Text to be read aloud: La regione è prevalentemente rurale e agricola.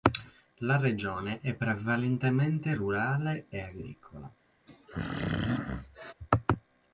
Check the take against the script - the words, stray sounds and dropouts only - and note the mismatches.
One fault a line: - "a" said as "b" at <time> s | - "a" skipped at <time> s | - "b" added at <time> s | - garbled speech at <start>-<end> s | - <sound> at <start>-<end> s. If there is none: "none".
- throat clearing at 4.7-6.1 s